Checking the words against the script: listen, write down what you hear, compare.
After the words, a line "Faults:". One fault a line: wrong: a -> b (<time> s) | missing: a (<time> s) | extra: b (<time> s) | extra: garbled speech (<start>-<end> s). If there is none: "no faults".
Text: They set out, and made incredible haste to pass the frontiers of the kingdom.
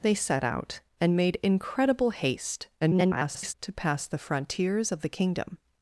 They set out, and made incredible haste [garbled] to pass the frontiers of the kingdom.
Faults:
extra: garbled speech (2.8-3.5 s)